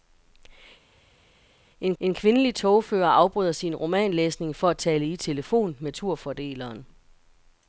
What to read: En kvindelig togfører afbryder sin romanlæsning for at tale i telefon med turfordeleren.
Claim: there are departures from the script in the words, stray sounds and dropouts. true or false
true